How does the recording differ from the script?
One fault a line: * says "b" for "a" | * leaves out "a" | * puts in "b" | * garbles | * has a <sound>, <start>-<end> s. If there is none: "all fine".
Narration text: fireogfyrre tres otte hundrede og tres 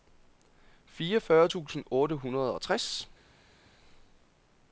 * says "tusind" for "tres"